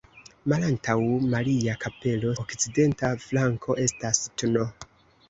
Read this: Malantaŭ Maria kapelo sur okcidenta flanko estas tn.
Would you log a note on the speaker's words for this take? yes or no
yes